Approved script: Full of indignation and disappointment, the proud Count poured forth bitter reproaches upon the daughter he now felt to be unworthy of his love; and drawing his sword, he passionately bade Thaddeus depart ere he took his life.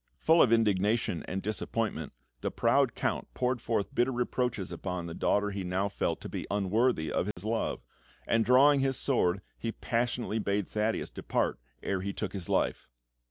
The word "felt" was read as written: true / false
true